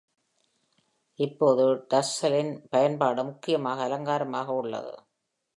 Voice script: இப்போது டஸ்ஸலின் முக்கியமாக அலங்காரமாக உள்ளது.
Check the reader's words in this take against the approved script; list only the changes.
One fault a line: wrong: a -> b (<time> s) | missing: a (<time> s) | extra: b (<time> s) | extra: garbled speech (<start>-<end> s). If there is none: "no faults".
extra: பயன்பாடு (2.7 s)